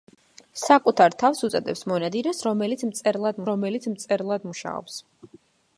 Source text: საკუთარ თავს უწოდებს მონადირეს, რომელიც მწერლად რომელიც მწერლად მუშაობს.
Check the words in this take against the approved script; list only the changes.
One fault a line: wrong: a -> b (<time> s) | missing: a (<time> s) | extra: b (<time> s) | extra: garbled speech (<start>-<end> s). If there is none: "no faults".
no faults